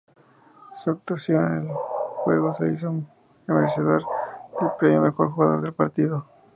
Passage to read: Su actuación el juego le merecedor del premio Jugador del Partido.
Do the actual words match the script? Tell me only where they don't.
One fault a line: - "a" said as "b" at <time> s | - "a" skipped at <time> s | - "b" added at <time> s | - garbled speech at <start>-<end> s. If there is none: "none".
- "en" added at 1.4 s
- "hizo" added at 2.7 s
- "Mejor" added at 5.0 s